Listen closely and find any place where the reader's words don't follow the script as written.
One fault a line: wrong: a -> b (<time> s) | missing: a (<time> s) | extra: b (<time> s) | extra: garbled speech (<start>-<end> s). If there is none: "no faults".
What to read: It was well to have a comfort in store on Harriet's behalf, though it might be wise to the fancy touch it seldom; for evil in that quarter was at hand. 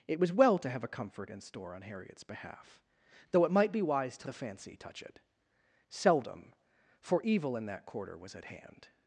no faults